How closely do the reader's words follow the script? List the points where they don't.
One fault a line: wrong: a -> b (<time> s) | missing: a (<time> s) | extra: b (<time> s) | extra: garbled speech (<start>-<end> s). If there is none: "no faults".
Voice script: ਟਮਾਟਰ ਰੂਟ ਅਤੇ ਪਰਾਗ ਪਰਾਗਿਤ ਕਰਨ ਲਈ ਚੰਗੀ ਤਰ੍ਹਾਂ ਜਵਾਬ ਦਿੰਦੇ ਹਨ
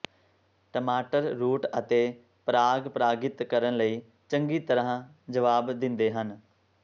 no faults